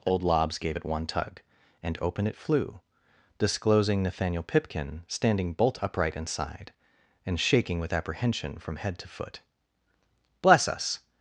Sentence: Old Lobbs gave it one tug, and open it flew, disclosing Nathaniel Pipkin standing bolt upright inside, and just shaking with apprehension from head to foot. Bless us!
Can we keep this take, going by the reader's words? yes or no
no